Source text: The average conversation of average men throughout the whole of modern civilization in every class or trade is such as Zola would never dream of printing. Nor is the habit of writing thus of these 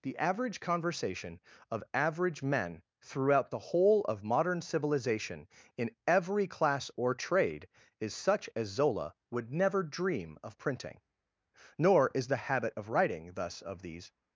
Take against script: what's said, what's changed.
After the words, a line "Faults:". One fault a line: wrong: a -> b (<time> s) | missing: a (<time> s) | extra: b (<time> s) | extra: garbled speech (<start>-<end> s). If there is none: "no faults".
The average conversation of average men throughout the whole of modern civilization in every class or trade is such as Zola would never dream of printing. Nor is the habit of writing thus of these
Faults:
no faults